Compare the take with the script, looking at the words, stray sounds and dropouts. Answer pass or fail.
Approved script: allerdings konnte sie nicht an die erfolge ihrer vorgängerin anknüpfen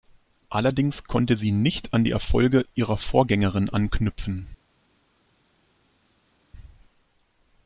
pass